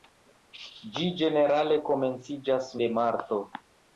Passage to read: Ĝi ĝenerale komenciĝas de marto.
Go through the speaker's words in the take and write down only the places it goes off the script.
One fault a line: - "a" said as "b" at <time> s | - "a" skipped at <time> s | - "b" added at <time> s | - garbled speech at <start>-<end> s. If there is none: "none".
none